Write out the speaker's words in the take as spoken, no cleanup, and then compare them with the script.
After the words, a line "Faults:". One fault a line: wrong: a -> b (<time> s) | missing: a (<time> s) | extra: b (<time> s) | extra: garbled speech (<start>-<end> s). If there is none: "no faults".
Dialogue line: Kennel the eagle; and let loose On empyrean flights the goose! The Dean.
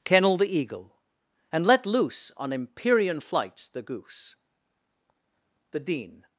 Kennel the eagle; and let loose On empyrean flights the goose! The Dean.
Faults:
no faults